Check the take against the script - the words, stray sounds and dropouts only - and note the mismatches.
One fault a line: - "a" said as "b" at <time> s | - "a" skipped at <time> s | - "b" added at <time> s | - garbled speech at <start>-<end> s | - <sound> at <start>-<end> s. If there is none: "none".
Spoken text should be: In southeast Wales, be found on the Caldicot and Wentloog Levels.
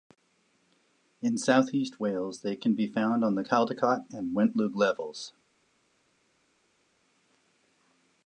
- "they can" added at 2.4 s